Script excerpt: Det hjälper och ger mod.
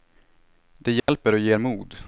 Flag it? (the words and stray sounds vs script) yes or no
yes